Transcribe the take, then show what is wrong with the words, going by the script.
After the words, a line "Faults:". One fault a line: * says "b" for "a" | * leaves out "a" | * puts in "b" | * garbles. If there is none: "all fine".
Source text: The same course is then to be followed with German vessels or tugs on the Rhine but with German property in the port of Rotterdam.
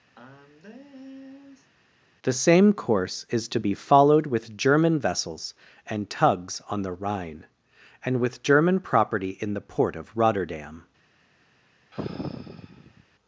The same course is to be followed with German vessels and tugs on the Rhine and with German property in the port of Rotterdam.
Faults:
* leaves out "then"
* says "and" for "or"
* says "and" for "but"